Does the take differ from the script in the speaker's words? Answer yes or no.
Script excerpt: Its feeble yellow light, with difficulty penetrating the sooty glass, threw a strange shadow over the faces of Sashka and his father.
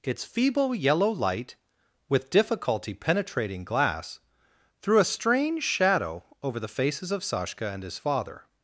yes